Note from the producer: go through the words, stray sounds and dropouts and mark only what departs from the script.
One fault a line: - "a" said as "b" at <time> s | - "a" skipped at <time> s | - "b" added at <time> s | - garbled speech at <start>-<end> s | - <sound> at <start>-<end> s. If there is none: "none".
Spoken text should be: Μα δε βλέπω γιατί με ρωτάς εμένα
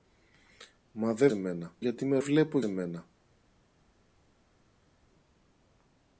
- "βλέπω" said as "εμένα" at 1.3 s
- "ρωτάς" said as "βλέπω" at 2.2 s